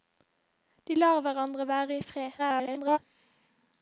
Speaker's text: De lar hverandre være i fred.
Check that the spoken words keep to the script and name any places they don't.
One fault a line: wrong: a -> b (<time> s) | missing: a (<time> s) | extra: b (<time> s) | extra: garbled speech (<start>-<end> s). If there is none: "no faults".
extra: garbled speech (2.4-3.0 s)